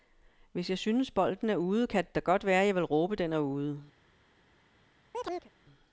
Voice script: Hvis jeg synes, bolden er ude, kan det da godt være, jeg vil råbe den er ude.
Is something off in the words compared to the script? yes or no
no